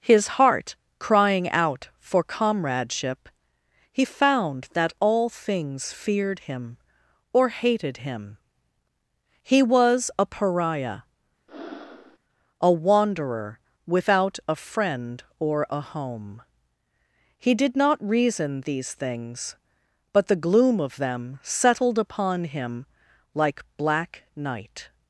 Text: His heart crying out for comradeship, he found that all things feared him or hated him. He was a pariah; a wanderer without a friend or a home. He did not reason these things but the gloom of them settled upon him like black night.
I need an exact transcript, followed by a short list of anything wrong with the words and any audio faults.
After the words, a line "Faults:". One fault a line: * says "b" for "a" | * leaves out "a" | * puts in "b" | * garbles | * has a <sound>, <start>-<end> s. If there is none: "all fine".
His heart crying out for comradeship, he found that all things feared him or hated him. He was a pariah; a wanderer without a friend or a home. He did not reason these things but the gloom of them settled upon him like black night.
Faults:
* has a breath, 11.5-12.2 s